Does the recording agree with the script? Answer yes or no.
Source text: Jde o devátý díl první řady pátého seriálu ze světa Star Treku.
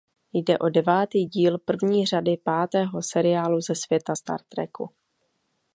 yes